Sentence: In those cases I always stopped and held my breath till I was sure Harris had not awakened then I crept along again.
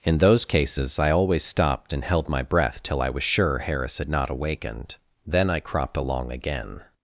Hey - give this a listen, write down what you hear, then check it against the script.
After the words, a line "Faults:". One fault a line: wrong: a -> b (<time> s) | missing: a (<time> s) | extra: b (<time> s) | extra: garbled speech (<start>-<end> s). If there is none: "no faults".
In those cases I always stopped and held my breath till I was sure Harris had not awakened then I cropped along again.
Faults:
wrong: crept -> cropped (5.6 s)